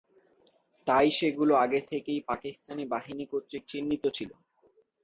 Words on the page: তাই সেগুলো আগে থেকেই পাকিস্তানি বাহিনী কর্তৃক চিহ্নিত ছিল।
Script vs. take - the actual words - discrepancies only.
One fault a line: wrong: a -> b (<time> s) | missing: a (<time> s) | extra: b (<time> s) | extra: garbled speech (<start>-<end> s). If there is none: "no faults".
no faults